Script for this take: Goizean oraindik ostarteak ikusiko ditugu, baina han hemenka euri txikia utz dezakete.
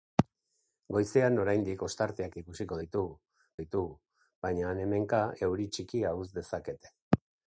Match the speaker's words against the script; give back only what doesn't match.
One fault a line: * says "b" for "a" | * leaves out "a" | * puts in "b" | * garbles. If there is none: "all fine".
* puts in "ditugu"